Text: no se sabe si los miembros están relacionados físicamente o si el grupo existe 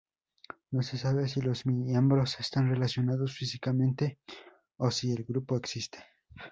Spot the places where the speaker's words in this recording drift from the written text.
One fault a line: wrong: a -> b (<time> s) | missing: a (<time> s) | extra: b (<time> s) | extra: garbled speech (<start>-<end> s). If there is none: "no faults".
no faults